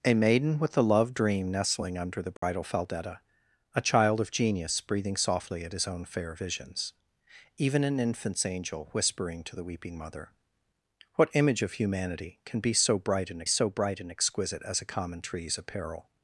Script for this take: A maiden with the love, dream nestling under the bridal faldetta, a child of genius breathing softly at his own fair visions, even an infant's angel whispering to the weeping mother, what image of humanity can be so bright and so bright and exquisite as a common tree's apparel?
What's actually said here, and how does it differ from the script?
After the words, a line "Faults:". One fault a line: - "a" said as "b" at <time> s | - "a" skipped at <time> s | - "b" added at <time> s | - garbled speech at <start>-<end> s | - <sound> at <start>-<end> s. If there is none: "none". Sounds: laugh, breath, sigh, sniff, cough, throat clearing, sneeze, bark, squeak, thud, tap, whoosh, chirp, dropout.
A maiden with the love, dream nestling under the bridal faldetta, a child of genius breathing softly at his own fair visions, even an infant's angel whispering to the weeping mother, what image of humanity can be so bright and so bright and exquisite as a common tree's apparel?
Faults:
- dropout at 2.4-2.4 s